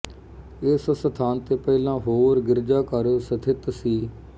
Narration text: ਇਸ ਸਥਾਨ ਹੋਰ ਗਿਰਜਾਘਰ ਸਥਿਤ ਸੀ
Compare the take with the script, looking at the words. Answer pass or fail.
fail